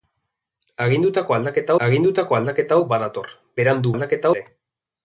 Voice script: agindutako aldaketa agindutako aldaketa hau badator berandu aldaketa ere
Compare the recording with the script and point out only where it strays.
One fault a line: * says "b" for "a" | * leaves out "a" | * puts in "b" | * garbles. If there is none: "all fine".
all fine